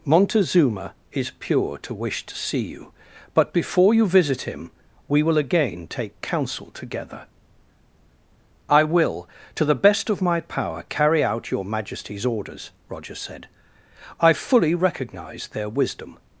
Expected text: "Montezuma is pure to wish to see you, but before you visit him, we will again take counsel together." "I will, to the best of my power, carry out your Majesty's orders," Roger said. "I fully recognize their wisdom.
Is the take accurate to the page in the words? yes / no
yes